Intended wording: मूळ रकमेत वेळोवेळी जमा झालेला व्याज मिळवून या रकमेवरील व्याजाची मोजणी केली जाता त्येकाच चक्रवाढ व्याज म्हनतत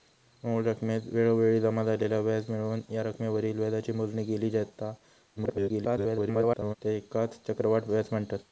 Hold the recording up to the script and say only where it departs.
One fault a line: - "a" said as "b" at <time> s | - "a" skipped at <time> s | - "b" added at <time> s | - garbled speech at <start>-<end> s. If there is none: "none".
- garbled speech at 5.4-6.7 s